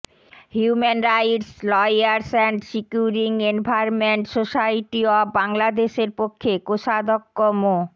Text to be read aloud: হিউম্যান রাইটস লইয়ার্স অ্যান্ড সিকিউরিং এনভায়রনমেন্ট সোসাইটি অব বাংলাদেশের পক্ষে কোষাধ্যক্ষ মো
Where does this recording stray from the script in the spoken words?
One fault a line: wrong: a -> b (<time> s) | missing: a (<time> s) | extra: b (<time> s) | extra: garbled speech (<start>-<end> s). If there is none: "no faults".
no faults